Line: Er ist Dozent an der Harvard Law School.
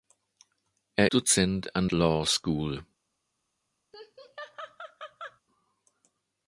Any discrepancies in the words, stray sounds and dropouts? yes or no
yes